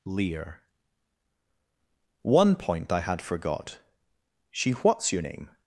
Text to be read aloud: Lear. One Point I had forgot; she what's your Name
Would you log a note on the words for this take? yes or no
no